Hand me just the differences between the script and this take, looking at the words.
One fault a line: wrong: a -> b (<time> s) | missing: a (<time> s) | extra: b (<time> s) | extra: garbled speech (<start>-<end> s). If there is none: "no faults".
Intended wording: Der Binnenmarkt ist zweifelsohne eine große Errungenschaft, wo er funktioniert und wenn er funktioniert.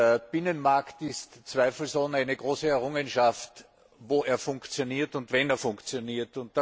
no faults